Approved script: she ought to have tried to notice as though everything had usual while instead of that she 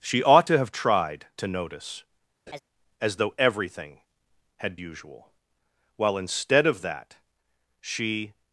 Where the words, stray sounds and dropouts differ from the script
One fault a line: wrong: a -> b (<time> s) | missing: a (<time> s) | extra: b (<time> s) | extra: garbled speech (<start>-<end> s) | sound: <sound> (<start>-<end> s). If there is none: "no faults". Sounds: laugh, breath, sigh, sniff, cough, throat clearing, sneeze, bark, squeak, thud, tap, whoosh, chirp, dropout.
sound: laugh (2.5-2.6 s)